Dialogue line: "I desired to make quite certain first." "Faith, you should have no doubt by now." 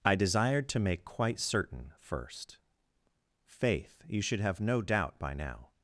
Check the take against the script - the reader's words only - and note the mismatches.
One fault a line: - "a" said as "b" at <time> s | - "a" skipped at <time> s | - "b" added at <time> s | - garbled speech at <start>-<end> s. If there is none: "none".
none